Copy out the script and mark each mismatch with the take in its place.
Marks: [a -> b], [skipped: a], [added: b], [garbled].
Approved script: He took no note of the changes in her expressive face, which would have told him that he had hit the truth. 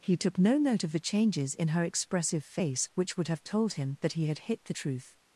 He took no note of the changes in her expressive face, which would have told him that he had hit the truth.